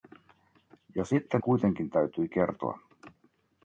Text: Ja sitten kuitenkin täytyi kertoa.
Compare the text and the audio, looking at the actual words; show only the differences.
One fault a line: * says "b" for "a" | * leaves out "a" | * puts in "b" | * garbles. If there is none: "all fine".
all fine